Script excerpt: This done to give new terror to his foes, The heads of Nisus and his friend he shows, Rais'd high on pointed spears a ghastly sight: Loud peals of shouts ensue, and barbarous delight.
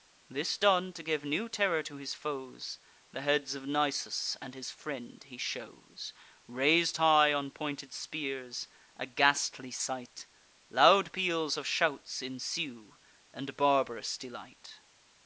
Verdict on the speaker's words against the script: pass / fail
pass